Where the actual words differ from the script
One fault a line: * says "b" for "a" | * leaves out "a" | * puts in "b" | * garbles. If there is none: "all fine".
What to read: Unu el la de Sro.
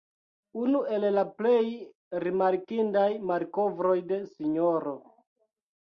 * puts in "plej rimarkindaj malkovroj"